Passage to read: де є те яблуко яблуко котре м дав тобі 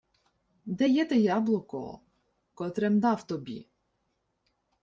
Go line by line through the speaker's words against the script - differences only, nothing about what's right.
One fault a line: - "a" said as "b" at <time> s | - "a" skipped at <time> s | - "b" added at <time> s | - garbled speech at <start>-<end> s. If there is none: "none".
- "яблуко" skipped at 2.0 s